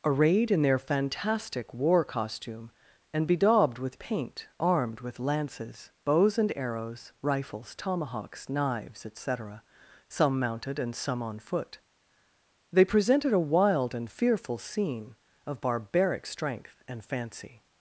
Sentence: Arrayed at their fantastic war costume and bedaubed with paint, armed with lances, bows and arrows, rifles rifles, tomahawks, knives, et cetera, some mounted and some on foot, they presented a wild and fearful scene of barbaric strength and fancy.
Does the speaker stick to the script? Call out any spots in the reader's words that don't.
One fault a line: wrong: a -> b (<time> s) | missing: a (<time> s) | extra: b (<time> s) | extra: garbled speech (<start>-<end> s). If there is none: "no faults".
wrong: at -> in (0.5 s)
missing: rifles (7.8 s)